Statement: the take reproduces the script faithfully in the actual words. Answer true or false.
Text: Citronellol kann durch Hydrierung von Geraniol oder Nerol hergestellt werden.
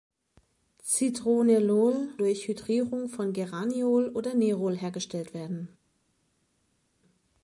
false